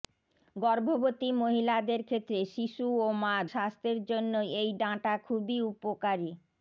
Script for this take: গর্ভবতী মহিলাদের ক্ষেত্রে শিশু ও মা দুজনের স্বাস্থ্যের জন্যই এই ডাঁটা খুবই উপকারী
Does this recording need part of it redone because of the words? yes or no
yes